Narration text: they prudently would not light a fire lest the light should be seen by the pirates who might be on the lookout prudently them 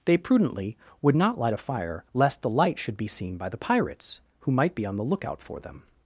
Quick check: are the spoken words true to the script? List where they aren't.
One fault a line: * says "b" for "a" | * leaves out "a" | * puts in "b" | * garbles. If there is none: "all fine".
* says "for" for "prudently"